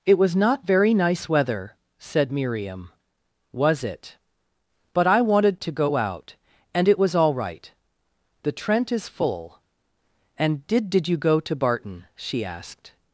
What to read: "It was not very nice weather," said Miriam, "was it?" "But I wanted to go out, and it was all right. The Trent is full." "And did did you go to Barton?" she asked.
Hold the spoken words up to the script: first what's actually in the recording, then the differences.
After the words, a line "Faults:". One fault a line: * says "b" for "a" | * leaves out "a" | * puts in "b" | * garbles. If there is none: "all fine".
"It was not very nice weather," said Miriam, "was it?" "But I wanted to go out, and it was all right. The Trent is full." "And did did you go to Barton?" she asked.
Faults:
all fine